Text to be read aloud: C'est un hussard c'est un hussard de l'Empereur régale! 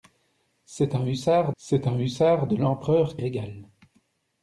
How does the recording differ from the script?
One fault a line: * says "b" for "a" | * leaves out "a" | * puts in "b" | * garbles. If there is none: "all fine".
all fine